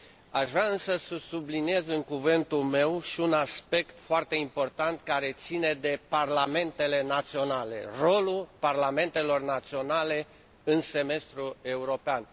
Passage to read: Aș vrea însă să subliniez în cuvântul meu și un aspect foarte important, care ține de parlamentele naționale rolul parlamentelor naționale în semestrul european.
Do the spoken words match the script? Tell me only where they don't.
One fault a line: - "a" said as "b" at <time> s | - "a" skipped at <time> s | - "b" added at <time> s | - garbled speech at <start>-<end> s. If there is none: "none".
none